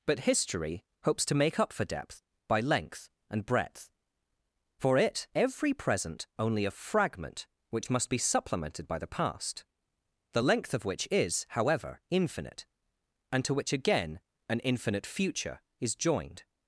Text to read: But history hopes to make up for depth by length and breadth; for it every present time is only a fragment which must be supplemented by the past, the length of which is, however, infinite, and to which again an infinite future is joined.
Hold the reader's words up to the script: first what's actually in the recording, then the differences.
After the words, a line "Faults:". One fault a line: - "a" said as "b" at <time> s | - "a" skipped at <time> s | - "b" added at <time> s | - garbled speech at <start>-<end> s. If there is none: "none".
But history hopes to make up for depth by length and breadth; for it every present only a fragment which must be supplemented by the past, the length of which is, however, infinite, and to which again an infinite future is joined.
Faults:
- "time is" skipped at 6.2 s